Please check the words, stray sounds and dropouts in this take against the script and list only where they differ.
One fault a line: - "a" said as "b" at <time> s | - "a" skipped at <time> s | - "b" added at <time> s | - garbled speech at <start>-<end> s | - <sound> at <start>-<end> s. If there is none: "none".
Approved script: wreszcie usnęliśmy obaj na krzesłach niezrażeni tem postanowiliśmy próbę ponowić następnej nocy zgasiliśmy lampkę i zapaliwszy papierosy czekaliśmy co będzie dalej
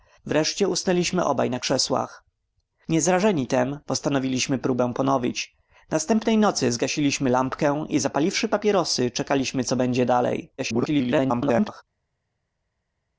- garbled speech at 10.6-11.8 s